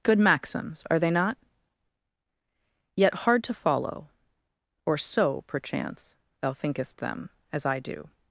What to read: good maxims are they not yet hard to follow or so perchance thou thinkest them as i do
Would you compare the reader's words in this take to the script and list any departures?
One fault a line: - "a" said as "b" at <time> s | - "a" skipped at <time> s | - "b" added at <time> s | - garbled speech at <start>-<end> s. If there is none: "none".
none